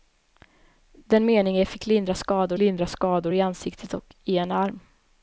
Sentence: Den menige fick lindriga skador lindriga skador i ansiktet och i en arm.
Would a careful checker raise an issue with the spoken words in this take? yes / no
no